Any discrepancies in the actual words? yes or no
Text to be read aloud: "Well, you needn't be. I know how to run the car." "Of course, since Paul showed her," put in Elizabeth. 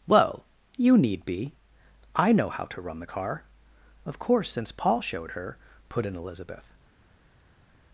yes